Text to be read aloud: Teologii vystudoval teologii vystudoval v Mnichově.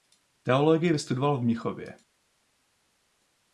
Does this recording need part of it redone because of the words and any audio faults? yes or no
yes